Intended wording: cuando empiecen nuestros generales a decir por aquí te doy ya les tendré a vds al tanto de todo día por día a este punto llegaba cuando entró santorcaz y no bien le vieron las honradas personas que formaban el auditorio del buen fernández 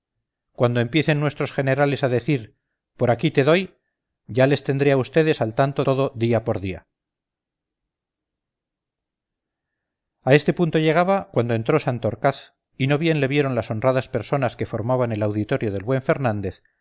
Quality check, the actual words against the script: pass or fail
fail